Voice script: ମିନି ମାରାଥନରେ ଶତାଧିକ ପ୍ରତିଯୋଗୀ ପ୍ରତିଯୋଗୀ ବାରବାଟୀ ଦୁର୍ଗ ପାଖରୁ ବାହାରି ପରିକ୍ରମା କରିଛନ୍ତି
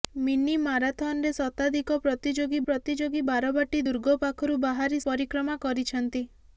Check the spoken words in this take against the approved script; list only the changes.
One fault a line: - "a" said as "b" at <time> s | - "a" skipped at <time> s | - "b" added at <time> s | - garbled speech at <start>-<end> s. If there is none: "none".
none